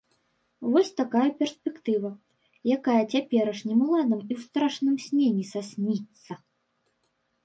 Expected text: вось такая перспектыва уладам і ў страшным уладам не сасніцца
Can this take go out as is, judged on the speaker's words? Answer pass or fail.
fail